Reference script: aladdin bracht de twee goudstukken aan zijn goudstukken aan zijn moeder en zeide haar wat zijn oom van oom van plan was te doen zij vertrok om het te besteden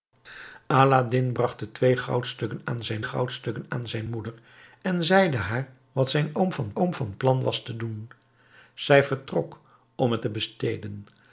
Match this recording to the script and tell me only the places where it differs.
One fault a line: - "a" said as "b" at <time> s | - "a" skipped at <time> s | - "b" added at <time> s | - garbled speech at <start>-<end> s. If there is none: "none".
none